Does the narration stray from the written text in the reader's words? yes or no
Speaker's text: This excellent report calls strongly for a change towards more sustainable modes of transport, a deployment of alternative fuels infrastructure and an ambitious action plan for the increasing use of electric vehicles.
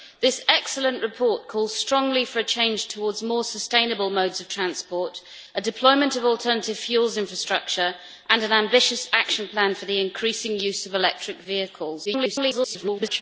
yes